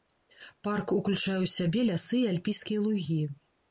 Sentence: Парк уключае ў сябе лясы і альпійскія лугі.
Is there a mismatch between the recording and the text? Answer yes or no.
no